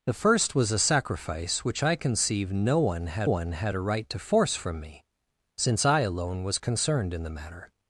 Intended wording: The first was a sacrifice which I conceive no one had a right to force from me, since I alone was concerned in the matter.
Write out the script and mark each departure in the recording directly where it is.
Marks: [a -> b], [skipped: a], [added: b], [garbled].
The first was a sacrifice which I conceive no one had [added: one had] a right to force from me, since I alone was concerned in the matter.